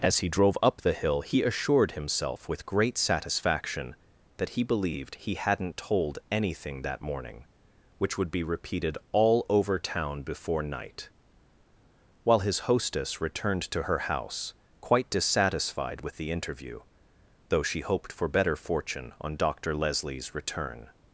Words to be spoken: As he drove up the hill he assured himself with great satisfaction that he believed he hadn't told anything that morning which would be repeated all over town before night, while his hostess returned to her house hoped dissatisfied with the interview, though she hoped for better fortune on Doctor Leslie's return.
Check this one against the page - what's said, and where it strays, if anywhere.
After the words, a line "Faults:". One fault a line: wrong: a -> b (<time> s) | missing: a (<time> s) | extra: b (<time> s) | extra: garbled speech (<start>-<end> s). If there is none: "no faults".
As he drove up the hill he assured himself with great satisfaction that he believed he hadn't told anything that morning which would be repeated all over town before night, while his hostess returned to her house quite dissatisfied with the interview, though she hoped for better fortune on Doctor Leslie's return.
Faults:
wrong: hoped -> quite (14.8 s)